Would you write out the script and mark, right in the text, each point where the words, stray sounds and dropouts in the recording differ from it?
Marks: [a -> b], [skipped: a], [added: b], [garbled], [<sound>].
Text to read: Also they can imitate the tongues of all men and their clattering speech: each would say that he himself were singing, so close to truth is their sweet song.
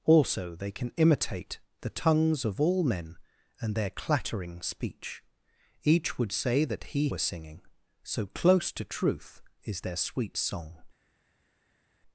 Also they can imitate the tongues of all men and their clattering speech: each would say that he [skipped: himself] were singing, so close to truth is their sweet song.